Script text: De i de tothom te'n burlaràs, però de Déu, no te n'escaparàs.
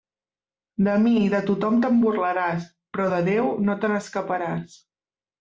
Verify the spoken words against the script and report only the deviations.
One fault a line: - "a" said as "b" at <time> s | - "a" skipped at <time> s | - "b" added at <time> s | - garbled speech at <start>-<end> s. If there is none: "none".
- "mi" added at 1.0 s